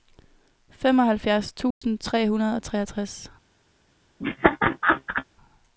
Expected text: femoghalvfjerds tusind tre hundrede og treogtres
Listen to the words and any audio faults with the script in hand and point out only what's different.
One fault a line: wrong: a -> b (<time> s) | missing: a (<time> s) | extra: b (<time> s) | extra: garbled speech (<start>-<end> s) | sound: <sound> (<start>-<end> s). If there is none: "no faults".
sound: dropout (1.7-1.8 s)
sound: laugh (4.2-5.2 s)